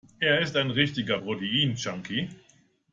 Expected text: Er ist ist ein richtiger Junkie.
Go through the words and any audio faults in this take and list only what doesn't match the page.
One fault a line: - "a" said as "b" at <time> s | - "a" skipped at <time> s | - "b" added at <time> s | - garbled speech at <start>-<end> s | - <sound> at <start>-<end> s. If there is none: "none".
- "ist" skipped at 0.6 s
- "Protein" added at 1.1 s